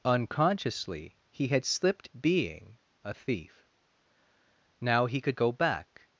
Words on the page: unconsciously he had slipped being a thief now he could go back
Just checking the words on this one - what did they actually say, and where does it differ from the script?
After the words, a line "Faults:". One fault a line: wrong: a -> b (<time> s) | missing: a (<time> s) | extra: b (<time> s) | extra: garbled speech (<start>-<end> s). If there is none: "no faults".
unconsciously he had slipped being a thief now he could go back
Faults:
no faults